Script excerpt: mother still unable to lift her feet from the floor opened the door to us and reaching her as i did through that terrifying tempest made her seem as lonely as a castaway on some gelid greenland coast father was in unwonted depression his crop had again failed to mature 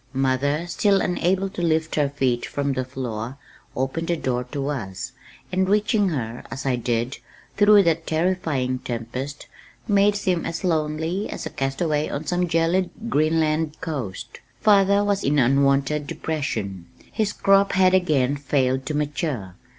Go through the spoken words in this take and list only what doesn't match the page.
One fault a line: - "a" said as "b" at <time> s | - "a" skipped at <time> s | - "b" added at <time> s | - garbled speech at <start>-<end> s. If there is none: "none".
- "her" skipped at 10.2 s